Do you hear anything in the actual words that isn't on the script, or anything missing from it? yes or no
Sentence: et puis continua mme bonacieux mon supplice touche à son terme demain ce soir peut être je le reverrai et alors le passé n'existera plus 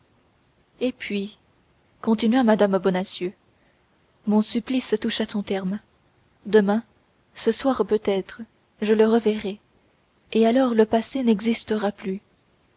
no